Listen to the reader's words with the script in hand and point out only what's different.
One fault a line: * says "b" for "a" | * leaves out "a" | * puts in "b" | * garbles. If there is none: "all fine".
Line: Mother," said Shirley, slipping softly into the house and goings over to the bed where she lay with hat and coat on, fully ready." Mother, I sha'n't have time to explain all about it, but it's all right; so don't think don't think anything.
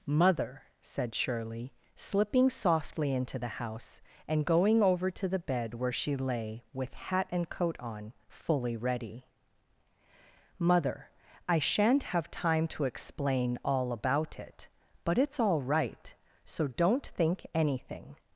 * says "going" for "goings"
* leaves out "don't think"